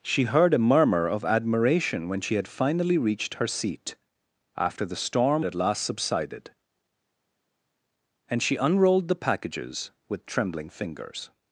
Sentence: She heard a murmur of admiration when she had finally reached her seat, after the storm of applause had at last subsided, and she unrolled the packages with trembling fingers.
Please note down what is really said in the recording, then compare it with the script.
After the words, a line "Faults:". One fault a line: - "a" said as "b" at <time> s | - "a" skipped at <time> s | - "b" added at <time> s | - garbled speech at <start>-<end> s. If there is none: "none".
She heard a murmur of admiration when she had finally reached her seat, after the storm at last subsided, and she unrolled the packages with trembling fingers.
Faults:
- "of applause had" skipped at 5.5 s